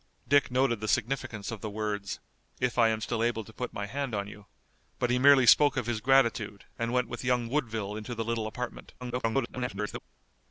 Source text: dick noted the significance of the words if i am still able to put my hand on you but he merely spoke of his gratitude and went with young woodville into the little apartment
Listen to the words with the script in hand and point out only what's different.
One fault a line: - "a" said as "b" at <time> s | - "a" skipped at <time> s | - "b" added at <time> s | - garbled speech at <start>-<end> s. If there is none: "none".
- garbled speech at 9.0-10.0 s